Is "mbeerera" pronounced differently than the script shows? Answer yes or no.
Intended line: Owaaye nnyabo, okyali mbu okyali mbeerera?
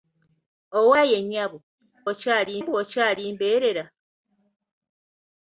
no